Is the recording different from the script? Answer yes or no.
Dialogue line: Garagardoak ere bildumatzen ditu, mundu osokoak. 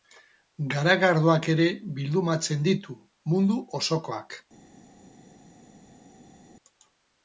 no